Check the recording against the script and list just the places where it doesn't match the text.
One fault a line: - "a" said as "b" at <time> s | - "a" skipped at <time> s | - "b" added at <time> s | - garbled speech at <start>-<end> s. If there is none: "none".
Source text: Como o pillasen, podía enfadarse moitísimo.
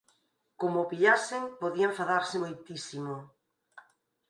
none